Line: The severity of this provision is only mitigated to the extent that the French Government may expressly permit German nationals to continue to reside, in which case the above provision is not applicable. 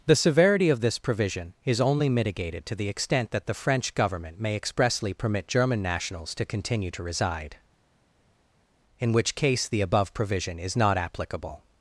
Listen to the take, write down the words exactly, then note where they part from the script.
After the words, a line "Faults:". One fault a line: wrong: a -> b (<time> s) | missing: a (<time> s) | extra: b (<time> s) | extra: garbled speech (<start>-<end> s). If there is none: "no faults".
The severity of this provision is only mitigated to the extent that the French Government may expressly permit German nationals to continue to reside, in which case the above provision is not applicable.
Faults:
no faults